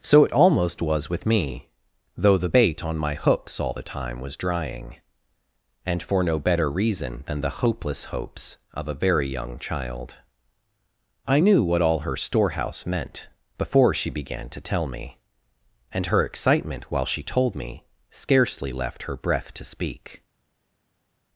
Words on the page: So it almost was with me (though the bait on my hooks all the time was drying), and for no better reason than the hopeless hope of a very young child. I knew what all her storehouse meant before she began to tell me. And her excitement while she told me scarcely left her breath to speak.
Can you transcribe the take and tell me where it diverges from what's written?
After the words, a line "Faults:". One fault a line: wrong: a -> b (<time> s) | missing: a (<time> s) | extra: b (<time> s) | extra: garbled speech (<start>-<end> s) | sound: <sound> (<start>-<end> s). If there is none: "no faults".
So it almost was with me (though the bait on my hooks all the time was drying), and for no better reason than the hopeless hopes of a very young child. I knew what all her storehouse meant before she began to tell me. And her excitement while she told me scarcely left her breath to speak.
Faults:
wrong: hope -> hopes (8.0 s)